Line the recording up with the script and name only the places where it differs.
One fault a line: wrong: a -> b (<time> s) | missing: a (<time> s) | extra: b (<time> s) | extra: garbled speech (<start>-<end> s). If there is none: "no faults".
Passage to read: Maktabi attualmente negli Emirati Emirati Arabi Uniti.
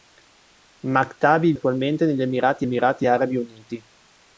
no faults